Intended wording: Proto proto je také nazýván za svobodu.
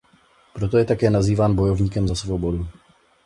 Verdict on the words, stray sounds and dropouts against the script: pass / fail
fail